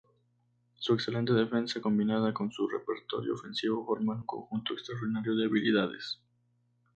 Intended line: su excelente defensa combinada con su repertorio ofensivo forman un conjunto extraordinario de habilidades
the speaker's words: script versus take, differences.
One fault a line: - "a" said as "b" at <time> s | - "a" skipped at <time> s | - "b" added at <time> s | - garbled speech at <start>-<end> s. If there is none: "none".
none